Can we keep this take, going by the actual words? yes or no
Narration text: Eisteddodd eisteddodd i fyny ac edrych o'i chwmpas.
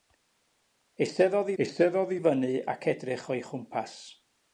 yes